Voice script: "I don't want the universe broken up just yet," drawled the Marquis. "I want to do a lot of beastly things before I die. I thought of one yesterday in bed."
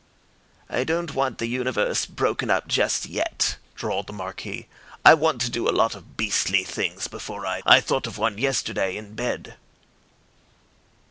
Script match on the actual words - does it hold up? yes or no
no